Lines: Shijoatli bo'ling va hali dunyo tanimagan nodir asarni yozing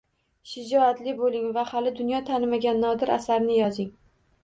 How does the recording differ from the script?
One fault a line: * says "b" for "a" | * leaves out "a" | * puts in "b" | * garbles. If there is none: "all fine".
all fine